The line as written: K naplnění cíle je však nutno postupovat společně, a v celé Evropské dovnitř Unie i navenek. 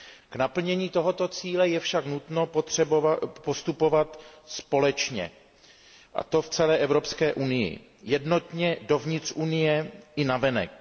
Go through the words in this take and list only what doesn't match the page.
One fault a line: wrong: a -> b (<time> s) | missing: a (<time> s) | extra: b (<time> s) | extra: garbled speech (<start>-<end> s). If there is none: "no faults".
extra: tohoto (0.9 s)
extra: to (6.2 s)
extra: unii jednotně (7.3 s)